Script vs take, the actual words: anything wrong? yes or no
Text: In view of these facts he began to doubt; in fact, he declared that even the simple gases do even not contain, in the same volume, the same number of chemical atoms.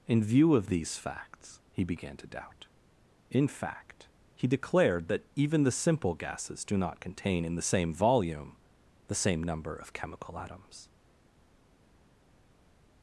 yes